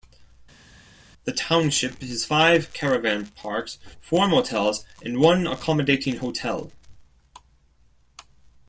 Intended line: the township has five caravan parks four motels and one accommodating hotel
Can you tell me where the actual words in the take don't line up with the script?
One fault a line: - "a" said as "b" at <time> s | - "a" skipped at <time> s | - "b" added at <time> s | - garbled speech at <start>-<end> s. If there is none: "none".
none